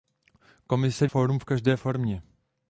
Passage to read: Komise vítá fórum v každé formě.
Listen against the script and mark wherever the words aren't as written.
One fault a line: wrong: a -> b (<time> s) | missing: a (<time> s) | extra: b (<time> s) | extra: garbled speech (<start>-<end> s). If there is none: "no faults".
missing: vítá (1.1 s)